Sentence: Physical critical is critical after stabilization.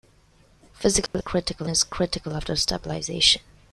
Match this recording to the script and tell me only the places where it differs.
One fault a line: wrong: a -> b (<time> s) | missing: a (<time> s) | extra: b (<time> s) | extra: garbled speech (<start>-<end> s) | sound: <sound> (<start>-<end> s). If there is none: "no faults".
sound: dropout (1.1-1.1 s)